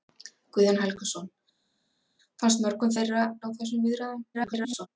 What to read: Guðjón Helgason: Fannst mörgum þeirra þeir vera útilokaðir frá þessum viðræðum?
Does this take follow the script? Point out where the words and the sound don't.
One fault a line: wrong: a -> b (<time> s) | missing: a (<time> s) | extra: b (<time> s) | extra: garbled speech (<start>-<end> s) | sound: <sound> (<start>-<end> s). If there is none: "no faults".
missing: þeir vera útilokaðir (3.2 s)
extra: garbled speech (4.3-4.9 s)